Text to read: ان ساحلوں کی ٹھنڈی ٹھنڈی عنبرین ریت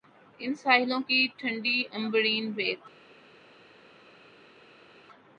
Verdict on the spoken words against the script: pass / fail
fail